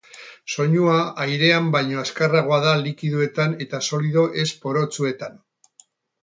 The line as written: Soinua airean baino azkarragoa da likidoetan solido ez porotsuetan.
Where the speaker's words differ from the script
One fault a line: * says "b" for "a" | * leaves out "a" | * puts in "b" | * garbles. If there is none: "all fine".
* puts in "eta"